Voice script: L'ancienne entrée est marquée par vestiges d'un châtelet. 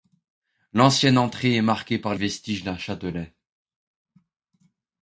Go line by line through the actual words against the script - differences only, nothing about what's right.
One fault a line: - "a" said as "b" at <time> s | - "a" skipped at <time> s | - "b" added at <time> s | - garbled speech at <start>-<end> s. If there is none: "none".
none